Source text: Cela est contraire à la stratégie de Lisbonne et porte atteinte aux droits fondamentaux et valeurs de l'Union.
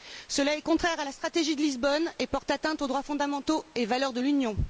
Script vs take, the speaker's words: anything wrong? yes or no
no